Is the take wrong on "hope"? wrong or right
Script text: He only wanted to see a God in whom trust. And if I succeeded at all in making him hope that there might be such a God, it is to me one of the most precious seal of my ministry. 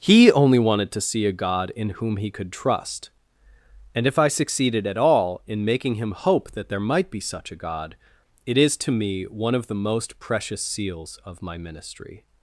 right